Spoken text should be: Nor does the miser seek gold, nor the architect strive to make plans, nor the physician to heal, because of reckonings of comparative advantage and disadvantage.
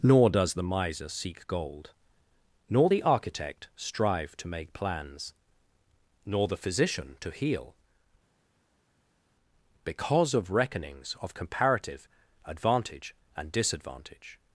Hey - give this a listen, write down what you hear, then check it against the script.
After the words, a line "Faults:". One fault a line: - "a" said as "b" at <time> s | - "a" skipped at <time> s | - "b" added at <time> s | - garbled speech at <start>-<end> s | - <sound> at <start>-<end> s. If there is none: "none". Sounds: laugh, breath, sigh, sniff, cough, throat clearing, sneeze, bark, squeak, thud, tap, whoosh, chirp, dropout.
Nor does the miser seek gold, nor the architect strive to make plans, nor the physician to heal, because of reckonings of comparative advantage and disadvantage.
Faults:
none